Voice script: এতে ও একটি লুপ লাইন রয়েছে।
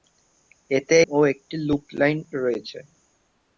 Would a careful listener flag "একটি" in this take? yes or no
no